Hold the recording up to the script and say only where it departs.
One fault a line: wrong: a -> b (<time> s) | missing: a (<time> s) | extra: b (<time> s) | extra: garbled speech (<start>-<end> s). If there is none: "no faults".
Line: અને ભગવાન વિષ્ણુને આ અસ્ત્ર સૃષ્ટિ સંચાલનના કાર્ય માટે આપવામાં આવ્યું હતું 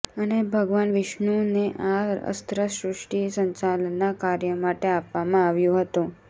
no faults